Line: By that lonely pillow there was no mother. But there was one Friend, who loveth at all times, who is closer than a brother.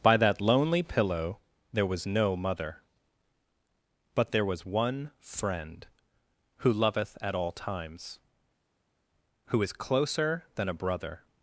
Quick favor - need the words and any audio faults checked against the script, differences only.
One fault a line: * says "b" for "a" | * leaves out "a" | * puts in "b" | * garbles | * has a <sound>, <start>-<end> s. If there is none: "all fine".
all fine